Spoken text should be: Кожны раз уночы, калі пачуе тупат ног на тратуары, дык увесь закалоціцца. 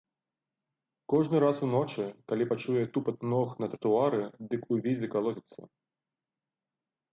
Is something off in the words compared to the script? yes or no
no